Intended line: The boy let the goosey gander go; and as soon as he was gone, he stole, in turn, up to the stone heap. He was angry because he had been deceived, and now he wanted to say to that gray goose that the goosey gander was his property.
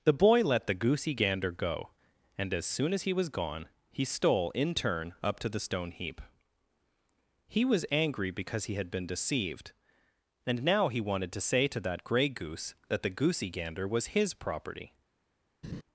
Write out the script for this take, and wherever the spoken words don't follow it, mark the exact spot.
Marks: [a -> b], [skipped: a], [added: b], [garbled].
The boy let the goosey gander go; and as soon as he was gone, he stole, in turn, up to the stone heap. He was angry because he had been deceived, and now he wanted to say to that gray goose that the goosey gander was his property.